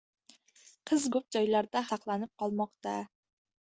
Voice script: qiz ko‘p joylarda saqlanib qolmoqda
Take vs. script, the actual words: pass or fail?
pass